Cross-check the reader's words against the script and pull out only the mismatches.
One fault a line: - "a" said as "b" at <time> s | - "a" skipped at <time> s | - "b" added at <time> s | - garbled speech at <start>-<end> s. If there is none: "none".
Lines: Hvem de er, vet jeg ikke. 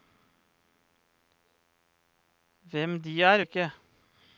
- "vet jeg" skipped at 3.4 s